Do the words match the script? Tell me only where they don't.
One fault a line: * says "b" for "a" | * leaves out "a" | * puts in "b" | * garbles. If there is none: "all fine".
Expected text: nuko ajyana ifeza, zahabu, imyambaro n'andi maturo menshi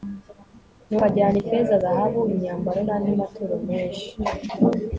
all fine